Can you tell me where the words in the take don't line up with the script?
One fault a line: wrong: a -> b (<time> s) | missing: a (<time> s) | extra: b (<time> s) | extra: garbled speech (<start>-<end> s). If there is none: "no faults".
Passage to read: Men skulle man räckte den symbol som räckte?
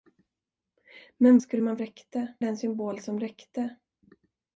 no faults